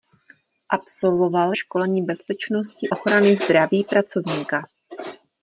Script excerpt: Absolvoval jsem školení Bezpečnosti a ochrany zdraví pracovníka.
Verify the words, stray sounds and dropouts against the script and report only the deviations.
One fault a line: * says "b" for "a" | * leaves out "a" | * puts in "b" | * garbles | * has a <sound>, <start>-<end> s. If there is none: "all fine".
* leaves out "jsem"
* leaves out "a"